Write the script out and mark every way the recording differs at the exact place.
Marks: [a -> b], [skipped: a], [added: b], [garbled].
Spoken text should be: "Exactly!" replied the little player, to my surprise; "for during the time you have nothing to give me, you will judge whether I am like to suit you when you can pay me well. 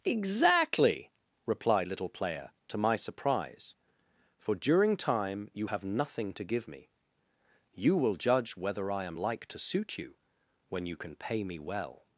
"Exactly!" replied [skipped: the] little player, to my surprise; "for during [skipped: the] time you have nothing to give me, you will judge whether I am like to suit you when you can pay me well.